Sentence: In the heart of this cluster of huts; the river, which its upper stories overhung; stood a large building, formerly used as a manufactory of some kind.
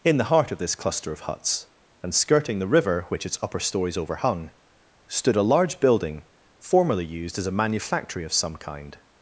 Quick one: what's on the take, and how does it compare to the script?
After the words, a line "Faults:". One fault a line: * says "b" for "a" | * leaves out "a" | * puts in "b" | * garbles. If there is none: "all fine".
In the heart of this cluster of huts; and skirting the river, which its upper stories overhung; stood a large building, formerly used as a manufactory of some kind.
Faults:
* puts in "and skirting"